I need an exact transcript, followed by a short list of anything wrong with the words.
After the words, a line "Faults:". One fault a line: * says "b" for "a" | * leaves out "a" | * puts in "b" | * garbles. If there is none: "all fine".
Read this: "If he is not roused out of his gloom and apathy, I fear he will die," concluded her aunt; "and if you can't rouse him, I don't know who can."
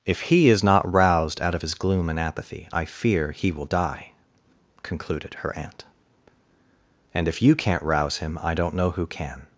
"If he is not roused out of his gloom and apathy, I fear he will die," concluded her aunt; "and if you can't rouse him, I don't know who can."
Faults:
all fine